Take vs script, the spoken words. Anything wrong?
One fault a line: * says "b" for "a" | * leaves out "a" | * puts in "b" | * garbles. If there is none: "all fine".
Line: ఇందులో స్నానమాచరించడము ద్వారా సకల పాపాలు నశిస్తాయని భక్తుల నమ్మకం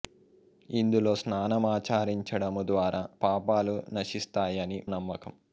* leaves out "సకల"
* leaves out "భక్తుల"